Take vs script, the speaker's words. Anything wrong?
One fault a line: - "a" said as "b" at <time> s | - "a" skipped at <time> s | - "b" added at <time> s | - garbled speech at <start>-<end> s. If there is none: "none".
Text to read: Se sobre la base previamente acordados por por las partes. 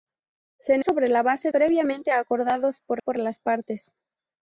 none